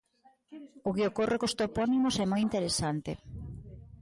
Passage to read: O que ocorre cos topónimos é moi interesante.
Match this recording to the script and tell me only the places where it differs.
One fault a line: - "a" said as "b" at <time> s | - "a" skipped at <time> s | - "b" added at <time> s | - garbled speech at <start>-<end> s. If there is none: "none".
none